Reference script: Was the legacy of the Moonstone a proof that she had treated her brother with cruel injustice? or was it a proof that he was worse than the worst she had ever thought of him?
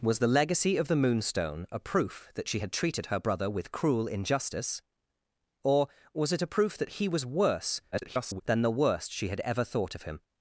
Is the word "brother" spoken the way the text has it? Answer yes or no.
yes